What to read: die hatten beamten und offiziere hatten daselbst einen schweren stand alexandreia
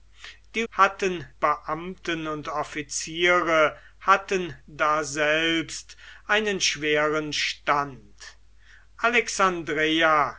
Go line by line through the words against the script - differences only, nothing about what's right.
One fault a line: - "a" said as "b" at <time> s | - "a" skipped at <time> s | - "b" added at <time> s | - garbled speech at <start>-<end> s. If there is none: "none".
none